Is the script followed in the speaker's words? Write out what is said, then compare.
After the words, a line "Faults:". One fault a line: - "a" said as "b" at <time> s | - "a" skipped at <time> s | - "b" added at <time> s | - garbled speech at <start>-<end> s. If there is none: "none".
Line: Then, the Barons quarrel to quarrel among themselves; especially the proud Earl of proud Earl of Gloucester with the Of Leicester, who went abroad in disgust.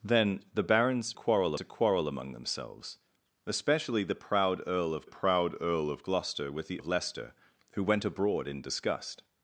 Then, the Barons quarrel to quarrel among themselves; especially the proud Earl of proud Earl of Gloucester with the Of Leicester, who went abroad in disgust.
Faults:
none